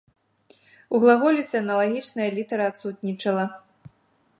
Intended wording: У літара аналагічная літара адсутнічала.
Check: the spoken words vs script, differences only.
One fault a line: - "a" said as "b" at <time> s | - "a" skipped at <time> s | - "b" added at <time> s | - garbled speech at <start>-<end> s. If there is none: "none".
- "літара" said as "глаголіцы" at 1.0 s